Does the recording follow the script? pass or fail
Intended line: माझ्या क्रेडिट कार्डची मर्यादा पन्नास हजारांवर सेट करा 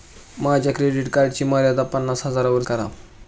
fail